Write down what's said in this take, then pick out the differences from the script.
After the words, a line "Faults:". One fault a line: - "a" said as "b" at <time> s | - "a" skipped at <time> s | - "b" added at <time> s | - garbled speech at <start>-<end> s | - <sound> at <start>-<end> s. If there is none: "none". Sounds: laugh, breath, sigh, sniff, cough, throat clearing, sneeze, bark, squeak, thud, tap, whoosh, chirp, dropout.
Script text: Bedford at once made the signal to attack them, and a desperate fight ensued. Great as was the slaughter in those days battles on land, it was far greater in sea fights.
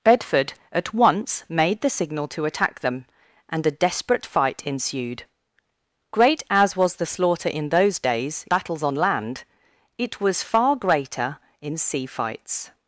Bedford at once made the signal to attack them, and a desperate fight ensued. Great as was the slaughter in those days battles on land, it was far greater in sea fights.
Faults:
none